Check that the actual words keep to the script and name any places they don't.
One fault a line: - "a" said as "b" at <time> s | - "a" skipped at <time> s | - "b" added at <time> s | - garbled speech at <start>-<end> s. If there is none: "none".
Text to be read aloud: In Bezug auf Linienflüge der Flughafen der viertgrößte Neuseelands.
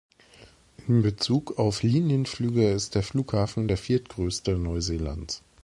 - "ist" added at 2.7 s